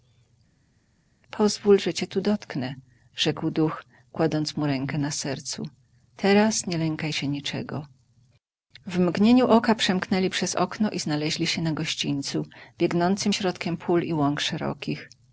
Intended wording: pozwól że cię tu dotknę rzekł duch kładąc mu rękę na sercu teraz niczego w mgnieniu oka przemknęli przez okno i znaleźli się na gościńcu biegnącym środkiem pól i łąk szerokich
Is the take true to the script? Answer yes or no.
no